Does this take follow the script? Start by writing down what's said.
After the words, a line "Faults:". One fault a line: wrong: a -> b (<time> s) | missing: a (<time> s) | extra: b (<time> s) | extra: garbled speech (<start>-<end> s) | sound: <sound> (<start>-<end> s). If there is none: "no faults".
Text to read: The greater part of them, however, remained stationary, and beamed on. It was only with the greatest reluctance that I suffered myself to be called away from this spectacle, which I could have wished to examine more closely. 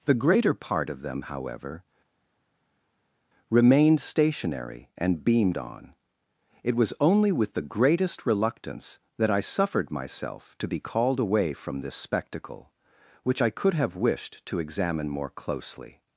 The greater part of them, however, remained stationary, and beamed on. It was only with the greatest reluctance that I suffered myself to be called away from this spectacle, which I could have wished to examine more closely.
Faults:
no faults